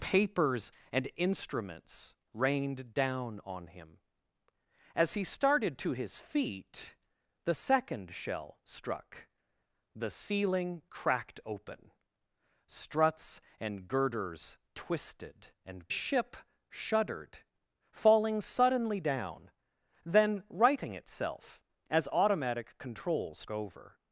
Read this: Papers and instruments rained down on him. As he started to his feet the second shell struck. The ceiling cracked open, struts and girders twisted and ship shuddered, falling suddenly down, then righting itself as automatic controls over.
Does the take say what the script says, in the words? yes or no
yes